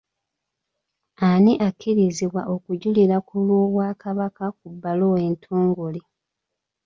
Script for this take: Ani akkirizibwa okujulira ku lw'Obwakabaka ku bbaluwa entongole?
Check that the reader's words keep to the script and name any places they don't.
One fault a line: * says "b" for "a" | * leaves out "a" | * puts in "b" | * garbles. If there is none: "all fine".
all fine